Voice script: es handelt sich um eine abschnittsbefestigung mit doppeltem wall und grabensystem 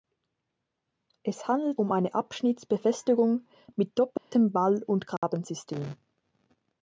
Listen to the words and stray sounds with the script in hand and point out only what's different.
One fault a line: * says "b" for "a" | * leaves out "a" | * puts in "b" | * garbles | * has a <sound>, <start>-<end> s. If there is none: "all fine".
* leaves out "sich"
* has a dropout, 4.2-4.3 s
* has a dropout, 5.2-5.2 s